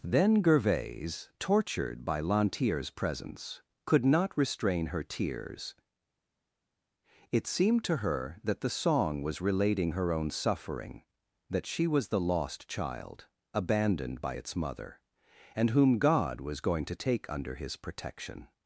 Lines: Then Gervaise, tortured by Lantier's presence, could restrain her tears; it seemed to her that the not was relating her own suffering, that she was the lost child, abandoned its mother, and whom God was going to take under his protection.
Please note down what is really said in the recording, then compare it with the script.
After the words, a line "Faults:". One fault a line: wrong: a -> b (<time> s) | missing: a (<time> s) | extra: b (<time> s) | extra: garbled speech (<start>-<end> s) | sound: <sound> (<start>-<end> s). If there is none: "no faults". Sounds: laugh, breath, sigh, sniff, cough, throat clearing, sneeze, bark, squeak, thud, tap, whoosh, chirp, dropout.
Then Gervaise, tortured by Lantier's presence, could not restrain her tears; it seemed to her that the song was relating her own suffering, that she was the lost child, abandoned by its mother, and whom God was going to take under his protection.
Faults:
extra: not (4.0 s)
wrong: not -> song (8.7 s)
extra: by (14.2 s)